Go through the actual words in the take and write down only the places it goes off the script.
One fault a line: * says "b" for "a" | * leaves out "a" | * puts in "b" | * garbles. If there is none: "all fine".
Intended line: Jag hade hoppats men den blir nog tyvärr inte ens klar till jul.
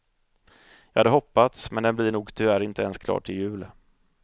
all fine